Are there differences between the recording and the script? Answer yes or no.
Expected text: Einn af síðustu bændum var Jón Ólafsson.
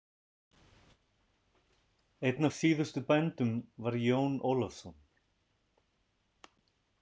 no